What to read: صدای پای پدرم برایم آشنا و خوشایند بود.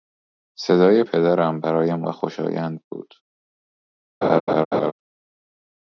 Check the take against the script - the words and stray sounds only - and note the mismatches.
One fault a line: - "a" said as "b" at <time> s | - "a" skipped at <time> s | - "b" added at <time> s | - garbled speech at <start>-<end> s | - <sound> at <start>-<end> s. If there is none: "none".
- "پای" skipped at 1.0 s
- "آشنا" skipped at 2.0 s
- laugh at 4.2-4.9 s